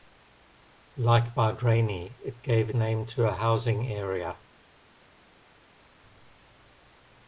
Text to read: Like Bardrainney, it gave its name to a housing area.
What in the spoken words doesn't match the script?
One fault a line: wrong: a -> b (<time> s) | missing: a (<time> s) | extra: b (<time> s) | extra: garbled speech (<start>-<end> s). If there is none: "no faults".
missing: its (2.7 s)